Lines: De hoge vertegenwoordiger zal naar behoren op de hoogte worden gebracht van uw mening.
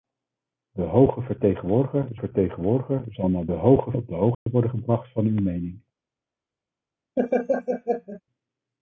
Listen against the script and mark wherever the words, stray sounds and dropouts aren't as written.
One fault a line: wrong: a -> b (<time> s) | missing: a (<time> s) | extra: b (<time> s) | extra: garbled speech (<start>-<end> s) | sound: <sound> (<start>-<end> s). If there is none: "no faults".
extra: vertegenwoordiger (2.1 s)
wrong: behoren -> hoge (3.5 s)
sound: dropout (4.3-4.5 s)
sound: laugh (7.2-8.2 s)